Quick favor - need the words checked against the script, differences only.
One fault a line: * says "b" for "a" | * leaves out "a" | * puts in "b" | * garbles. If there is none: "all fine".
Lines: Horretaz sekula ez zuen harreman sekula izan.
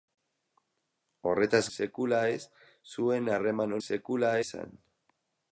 all fine